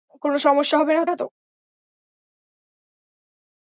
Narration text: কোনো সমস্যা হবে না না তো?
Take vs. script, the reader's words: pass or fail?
pass